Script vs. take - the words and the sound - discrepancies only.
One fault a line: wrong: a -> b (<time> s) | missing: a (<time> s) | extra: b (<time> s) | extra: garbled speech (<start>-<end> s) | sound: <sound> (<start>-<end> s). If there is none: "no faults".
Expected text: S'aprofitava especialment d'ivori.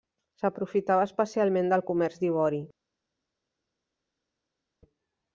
extra: del comerç (1.7 s)